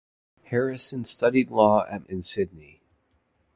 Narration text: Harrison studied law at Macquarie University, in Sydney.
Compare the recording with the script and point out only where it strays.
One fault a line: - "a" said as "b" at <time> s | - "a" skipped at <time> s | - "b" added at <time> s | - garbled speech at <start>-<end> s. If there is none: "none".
- "Macquarie University" skipped at 2.1 s